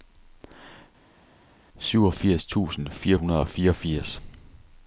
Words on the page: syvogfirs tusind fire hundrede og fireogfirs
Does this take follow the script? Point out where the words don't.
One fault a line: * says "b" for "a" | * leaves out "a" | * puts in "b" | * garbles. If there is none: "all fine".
all fine